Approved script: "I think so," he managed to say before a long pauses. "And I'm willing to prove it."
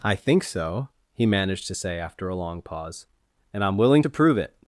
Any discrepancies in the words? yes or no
yes